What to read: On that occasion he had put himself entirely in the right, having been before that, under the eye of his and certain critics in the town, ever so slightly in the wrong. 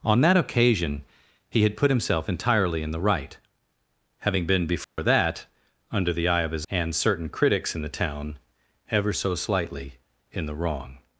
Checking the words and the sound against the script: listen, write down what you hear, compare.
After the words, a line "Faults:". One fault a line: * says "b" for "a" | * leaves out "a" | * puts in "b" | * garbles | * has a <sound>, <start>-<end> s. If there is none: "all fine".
On that occasion he had put himself entirely in the right, having been before that, under the eye of his and certain critics in the town, ever so slightly in the wrong.
Faults:
* has a dropout, 4.8-5.0 s